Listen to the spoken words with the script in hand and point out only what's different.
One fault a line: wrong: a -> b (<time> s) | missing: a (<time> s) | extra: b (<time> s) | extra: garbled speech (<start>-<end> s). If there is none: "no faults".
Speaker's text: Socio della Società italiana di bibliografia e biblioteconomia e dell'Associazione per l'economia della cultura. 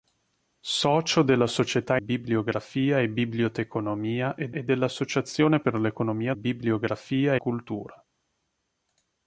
missing: italiana di (2.0 s)
extra: e (4.5 s)
wrong: della -> bibliografia (6.3 s)